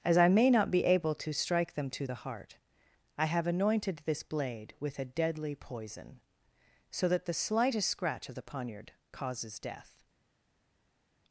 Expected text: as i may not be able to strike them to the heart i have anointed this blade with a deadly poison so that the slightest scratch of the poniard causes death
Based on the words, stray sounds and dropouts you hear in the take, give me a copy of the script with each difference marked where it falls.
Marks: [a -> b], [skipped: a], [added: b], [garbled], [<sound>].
as i may not be able to strike them to the heart i have anointed this blade with a deadly poison so that the slightest scratch of the poniard causes death